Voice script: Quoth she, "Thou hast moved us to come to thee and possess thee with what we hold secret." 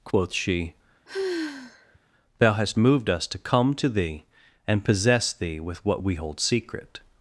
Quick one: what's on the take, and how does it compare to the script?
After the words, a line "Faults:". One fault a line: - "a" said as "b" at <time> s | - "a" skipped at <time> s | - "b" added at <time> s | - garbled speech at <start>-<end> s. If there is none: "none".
Quoth she, "Thou hast moved us to come to thee and possess thee with what we hold secret."
Faults:
none